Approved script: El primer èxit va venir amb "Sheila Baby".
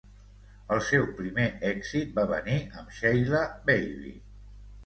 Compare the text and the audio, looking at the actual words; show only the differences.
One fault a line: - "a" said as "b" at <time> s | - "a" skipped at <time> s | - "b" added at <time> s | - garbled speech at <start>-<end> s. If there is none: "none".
- "seu" added at 0.8 s